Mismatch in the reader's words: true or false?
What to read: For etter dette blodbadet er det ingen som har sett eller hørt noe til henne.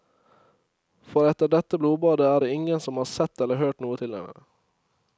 false